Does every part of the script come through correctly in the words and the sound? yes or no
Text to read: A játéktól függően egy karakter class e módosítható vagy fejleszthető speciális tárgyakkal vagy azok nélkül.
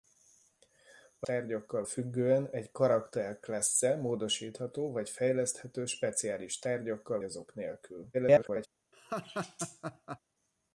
no